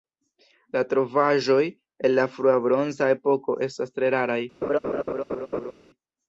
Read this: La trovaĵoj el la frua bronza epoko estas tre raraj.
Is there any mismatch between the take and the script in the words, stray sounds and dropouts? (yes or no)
yes